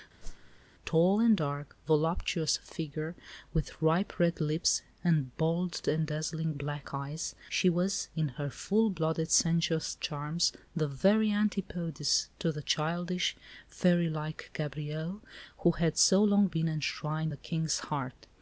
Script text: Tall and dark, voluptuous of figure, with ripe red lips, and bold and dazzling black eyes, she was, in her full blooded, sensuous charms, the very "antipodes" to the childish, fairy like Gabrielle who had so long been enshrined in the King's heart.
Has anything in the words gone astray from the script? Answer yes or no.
yes